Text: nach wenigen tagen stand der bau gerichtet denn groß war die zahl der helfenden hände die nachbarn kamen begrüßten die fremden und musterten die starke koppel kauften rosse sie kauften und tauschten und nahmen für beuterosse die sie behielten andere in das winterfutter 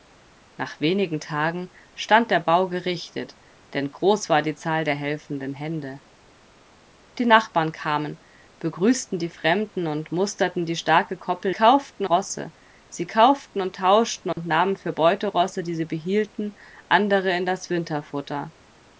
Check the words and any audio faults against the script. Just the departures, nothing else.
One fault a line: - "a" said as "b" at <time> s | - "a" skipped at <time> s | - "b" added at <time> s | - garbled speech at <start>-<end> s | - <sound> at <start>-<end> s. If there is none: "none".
- dropout at 14.3-14.4 s